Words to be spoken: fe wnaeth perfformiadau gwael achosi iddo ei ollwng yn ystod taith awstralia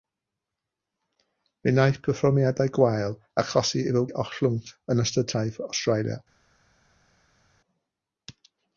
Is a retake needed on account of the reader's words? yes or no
no